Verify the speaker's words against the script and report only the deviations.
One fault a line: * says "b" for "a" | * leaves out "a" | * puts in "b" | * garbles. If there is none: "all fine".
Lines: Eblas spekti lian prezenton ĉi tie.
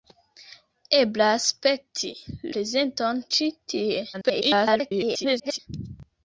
* leaves out "lian"
* garbles